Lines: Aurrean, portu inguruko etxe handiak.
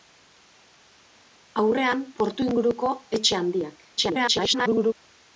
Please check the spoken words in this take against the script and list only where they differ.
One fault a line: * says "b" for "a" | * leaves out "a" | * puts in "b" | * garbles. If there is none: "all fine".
* garbles